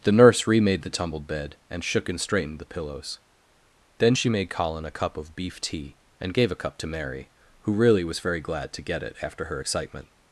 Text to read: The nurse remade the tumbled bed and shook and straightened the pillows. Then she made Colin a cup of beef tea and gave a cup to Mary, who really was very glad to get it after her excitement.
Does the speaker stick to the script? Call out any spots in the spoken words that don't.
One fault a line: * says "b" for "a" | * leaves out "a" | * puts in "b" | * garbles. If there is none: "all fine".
all fine